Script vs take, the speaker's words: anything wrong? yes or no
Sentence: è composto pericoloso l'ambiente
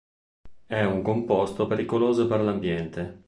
yes